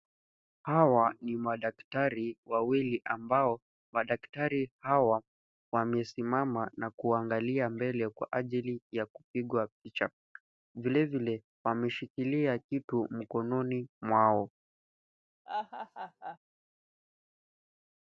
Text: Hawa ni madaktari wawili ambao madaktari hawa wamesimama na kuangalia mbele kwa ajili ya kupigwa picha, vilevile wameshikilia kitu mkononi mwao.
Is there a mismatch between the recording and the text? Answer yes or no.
no